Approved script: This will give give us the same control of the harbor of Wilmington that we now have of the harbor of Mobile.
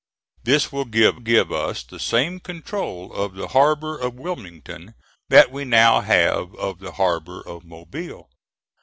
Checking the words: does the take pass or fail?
pass